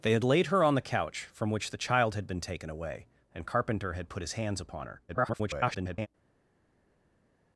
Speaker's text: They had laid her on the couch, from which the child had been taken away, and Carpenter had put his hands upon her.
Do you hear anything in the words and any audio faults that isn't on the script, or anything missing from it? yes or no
yes